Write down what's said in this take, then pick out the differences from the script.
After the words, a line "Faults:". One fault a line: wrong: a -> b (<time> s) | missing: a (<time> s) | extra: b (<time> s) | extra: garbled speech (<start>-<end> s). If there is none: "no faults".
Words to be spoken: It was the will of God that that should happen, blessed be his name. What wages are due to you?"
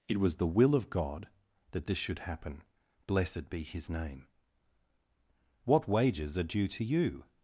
It was the will of God that this should happen, blessed be his name. What wages are due to you?"
Faults:
wrong: that -> this (1.9 s)